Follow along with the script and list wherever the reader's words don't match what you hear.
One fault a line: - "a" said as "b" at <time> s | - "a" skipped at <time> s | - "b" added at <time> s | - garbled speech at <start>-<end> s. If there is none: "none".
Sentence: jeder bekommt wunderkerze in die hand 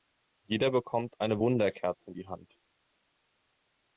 - "eine" added at 1.2 s